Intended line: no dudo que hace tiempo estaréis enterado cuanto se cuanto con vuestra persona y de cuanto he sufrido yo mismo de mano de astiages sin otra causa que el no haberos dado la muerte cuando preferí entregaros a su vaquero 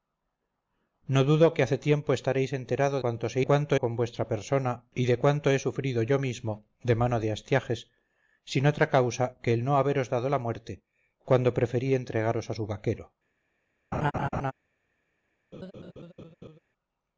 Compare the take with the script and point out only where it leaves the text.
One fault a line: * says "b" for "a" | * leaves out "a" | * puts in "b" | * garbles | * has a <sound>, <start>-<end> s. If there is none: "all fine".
* has a laugh, 13.9-14.5 s
* has a laugh, 15.5-16.6 s